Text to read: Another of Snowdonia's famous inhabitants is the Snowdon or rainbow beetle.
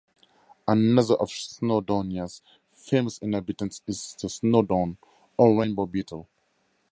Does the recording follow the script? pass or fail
pass